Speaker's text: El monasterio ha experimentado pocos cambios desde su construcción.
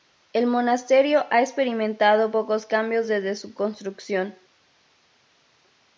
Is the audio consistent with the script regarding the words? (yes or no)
yes